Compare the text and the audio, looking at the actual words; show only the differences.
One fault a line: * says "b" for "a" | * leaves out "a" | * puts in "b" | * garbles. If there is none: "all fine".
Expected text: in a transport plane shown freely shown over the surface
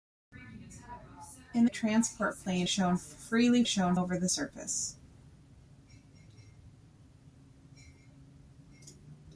all fine